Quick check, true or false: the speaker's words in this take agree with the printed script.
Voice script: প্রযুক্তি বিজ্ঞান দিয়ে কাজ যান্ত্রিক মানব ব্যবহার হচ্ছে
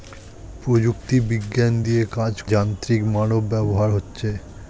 true